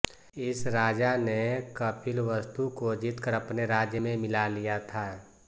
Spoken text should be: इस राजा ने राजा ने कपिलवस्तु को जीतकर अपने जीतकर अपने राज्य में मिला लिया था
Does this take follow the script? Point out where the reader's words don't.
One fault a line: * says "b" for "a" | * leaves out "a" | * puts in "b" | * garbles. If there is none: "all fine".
* leaves out "राजा ने"
* leaves out "जीतकर अपने"